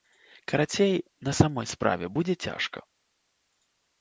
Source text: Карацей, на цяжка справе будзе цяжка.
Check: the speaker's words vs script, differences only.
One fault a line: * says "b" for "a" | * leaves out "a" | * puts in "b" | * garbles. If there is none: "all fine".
* says "самой" for "цяжка"